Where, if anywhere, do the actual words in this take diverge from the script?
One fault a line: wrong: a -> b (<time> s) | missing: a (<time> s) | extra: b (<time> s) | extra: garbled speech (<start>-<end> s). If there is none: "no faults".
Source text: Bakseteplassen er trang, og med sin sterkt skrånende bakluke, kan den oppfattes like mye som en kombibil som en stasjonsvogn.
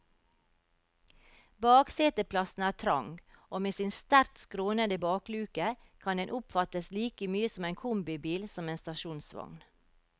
no faults